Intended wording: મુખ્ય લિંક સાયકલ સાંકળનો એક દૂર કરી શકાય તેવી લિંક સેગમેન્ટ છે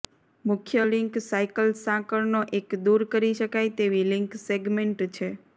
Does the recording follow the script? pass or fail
pass